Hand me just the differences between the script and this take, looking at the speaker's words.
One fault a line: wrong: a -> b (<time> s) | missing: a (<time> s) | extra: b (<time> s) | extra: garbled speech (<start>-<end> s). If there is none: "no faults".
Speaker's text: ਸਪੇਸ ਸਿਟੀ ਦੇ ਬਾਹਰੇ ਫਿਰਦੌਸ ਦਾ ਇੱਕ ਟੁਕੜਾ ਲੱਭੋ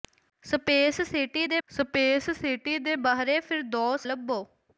wrong: ਬਾਹਰੇ ਫਿਰਦੌਸ ਦਾ ਇੱਕ ਟੁਕੜਾ -> ਸਪੇਸ ਸਿਟੀ ਦੇ ਬਾਹਰੇ ਫਿਰਦੌਸ (1.7 s)